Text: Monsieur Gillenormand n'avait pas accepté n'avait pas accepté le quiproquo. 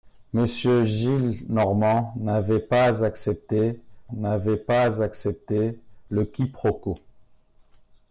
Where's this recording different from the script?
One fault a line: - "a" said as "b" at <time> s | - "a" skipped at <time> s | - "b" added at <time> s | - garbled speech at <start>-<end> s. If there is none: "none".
none